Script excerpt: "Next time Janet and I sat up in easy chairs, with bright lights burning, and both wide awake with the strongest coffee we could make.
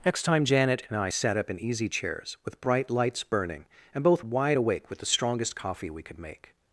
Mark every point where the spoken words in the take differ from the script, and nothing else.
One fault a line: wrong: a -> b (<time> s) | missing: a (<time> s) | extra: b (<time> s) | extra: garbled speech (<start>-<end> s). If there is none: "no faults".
no faults